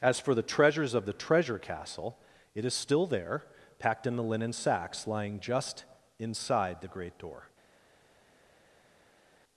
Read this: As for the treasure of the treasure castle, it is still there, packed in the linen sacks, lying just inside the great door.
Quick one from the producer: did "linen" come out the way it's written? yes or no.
yes